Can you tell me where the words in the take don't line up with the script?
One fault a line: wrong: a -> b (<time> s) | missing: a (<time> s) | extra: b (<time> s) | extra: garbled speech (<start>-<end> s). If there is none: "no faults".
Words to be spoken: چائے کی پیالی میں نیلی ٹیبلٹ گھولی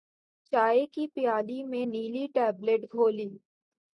no faults